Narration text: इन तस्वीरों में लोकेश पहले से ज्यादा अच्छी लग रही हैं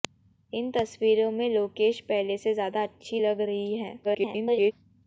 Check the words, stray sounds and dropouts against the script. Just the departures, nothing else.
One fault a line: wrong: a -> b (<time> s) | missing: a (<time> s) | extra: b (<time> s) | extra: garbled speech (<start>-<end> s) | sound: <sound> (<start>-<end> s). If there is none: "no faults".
extra: garbled speech (4.0-4.7 s)